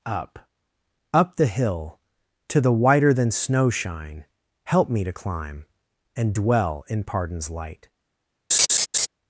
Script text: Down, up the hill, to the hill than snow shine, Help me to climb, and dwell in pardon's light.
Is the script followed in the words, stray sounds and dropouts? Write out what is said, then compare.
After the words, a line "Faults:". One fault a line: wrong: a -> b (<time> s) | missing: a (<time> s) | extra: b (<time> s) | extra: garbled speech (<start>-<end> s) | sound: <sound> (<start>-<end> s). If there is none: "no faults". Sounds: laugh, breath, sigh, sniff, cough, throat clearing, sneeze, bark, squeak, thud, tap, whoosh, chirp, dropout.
Up, up the hill, to the whiter than snow shine, Help me to climb, and dwell in pardon's light.
Faults:
wrong: Down -> Up (0.1 s)
wrong: hill -> whiter (2.7 s)
sound: laugh (8.5-9.1 s)